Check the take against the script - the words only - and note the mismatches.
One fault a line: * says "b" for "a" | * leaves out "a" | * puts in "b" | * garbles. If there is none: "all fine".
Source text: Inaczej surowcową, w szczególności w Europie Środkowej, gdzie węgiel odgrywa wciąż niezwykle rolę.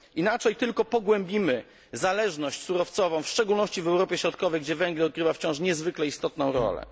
* puts in "tylko pogłębimy zależność"
* puts in "istotną"